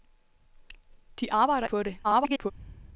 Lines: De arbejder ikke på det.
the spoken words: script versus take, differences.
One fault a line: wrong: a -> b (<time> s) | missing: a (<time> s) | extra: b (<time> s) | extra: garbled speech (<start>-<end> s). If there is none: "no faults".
missing: ikke (1.7 s)
extra: garbled speech (2.0-2.5 s)